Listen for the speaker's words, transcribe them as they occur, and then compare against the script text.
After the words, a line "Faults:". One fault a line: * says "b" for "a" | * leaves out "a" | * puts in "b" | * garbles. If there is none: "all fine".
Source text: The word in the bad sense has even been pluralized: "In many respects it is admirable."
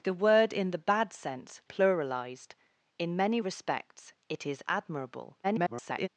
The word in the bad sense pluralized: "In many respects it is admirable." [garbled]
Faults:
* leaves out "has even been"
* garbles